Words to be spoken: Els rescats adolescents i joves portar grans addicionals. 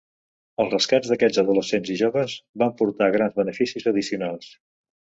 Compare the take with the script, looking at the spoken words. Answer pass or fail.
fail